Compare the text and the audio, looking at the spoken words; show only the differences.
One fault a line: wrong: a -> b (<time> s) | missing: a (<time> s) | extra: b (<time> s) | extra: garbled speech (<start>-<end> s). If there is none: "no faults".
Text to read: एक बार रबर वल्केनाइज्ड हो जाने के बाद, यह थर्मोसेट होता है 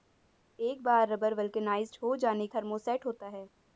missing: के बाद यह (2.5 s)